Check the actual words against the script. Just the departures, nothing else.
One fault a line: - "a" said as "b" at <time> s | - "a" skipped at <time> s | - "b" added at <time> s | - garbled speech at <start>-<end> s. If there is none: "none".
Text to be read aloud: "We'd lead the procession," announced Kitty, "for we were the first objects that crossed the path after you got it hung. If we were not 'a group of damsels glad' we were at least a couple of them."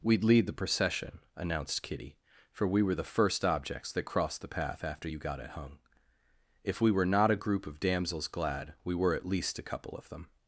none